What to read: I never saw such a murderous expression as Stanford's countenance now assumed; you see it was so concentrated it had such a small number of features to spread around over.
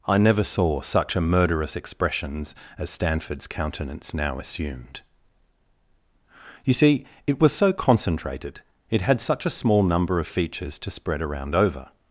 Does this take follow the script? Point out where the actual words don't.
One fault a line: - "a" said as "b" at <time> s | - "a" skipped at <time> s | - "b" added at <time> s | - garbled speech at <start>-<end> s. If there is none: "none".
- "expression" said as "expressions" at 1.8 s